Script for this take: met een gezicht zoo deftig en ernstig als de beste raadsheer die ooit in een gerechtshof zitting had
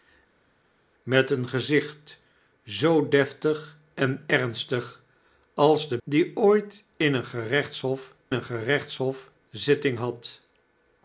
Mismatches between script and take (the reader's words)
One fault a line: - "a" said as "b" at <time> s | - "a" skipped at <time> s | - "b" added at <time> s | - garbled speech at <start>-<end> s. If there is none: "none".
- "beste raadsheer" skipped at 6.0 s
- "een gerechtshof" added at 8.3 s